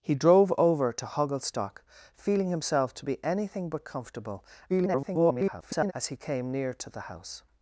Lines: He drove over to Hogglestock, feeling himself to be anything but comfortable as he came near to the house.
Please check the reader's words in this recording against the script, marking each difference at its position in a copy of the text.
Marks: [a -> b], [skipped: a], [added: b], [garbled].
He drove over to Hogglestock, feeling himself to be anything but comfortable [garbled] as he came near to the house.